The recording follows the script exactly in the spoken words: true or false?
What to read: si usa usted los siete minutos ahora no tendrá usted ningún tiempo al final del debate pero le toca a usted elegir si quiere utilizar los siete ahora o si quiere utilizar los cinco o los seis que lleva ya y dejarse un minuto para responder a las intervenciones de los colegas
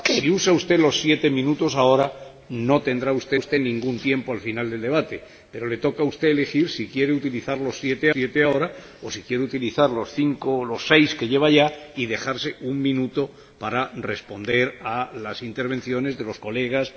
false